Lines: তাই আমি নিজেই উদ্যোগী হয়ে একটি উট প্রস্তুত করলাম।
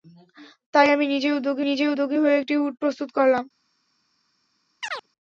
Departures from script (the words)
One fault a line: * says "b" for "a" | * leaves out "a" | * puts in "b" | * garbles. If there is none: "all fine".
* puts in "নিজেই উদ্যোগী"